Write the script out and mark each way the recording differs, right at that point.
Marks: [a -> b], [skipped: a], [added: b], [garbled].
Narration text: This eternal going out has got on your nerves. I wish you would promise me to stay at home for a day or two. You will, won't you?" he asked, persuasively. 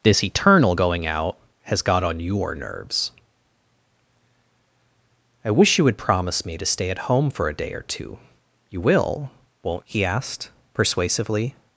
This eternal going out has got on your nerves. I wish you would promise me to stay at home for a day or two. You will, won't [skipped: you?"] he asked, persuasively.